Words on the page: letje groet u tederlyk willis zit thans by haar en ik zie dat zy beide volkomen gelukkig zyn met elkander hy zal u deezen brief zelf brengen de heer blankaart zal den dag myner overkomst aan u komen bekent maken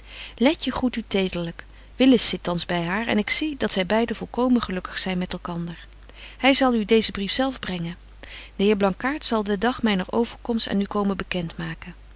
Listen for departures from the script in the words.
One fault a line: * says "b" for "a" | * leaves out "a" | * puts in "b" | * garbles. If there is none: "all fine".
all fine